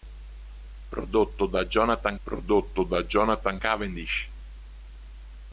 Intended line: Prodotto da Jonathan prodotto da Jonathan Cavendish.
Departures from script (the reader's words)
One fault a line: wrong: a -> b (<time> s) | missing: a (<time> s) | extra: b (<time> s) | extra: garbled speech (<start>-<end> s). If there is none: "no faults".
no faults